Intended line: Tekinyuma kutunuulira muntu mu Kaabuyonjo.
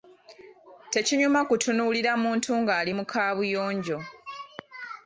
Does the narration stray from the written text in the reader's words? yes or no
yes